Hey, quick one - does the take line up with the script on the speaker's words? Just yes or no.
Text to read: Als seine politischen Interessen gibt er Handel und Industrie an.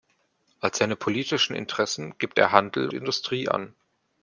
no